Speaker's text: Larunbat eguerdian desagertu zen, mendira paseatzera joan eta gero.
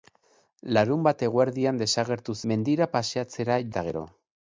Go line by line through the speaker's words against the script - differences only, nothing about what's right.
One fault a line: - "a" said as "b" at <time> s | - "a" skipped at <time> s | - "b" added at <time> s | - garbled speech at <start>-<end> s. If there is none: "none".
- "zen" skipped at 2.4 s
- "joan" skipped at 3.6 s